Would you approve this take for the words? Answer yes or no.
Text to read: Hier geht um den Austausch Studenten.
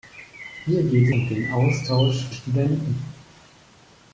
yes